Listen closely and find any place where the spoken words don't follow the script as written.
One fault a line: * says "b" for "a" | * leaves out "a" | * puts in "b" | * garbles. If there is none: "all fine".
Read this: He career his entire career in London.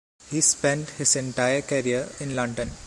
* says "spent" for "career"